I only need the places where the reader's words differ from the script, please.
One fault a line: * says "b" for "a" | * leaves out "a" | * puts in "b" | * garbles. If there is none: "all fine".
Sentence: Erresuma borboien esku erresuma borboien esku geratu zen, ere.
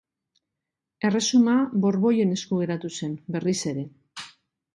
* leaves out "erresuma borboien esku"
* puts in "berriz"